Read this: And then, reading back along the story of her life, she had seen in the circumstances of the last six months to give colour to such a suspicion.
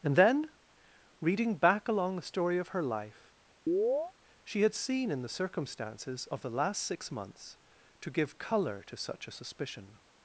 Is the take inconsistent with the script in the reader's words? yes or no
no